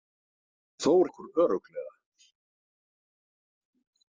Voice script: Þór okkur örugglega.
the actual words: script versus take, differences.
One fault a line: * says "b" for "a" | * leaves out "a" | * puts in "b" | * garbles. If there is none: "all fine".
all fine